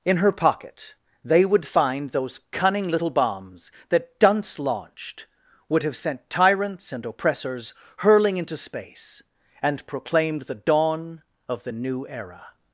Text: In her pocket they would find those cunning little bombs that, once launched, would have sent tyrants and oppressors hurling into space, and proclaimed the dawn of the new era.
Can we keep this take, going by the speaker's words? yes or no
no